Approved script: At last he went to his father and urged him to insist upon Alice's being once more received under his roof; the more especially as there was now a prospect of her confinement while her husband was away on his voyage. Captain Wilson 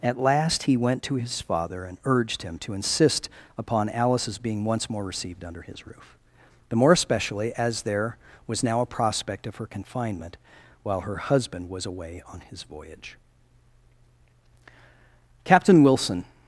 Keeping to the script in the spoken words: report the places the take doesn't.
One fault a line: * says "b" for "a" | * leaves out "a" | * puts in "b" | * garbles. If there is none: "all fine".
all fine